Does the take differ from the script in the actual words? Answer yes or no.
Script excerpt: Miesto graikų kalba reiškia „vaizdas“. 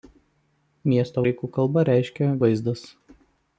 no